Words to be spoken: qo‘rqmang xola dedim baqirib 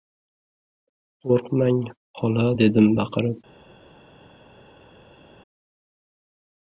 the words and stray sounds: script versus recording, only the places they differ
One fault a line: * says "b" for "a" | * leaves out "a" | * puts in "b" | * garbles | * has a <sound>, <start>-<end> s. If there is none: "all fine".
all fine